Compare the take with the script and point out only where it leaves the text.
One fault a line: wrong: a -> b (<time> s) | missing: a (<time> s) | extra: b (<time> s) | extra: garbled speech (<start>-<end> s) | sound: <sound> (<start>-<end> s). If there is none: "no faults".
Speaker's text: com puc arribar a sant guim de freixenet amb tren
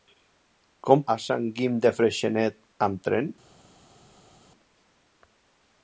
missing: puc arribar (1.0 s)